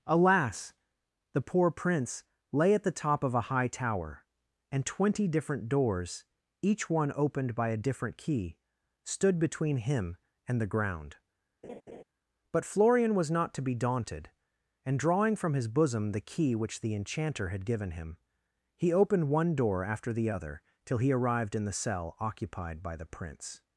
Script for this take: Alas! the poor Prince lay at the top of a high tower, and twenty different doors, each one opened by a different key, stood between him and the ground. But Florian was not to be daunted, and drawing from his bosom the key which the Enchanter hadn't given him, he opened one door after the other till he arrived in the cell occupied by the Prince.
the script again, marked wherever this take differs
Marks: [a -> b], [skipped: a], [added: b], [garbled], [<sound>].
Alas! the poor Prince lay at the top of a high tower, and twenty different doors, each one opened by a different key, stood between him and the ground. [laugh] But Florian was not to be daunted, and drawing from his bosom the key which the Enchanter [hadn't -> had] given him, he opened one door after the other till he arrived in the cell occupied by the Prince.